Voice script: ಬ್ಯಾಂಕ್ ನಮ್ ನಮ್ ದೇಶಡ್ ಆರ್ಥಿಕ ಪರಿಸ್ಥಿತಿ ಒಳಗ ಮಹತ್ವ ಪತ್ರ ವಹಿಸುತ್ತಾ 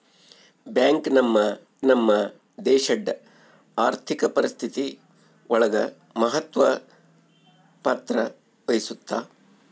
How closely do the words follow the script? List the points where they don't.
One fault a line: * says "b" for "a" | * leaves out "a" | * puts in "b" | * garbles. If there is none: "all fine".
all fine